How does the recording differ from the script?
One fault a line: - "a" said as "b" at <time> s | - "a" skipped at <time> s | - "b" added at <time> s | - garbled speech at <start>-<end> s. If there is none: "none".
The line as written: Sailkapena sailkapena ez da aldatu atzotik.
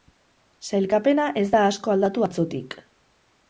- "sailkapena" skipped at 1.3 s
- "asko" added at 1.7 s